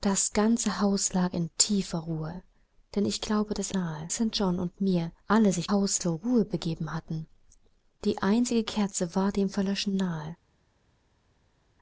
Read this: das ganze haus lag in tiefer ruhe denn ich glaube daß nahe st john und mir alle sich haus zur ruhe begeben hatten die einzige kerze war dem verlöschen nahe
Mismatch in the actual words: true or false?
false